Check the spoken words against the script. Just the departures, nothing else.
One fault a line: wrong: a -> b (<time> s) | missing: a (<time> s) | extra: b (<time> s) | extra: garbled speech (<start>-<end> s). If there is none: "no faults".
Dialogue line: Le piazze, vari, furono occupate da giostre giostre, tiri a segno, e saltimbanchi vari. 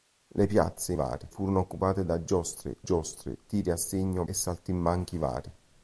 no faults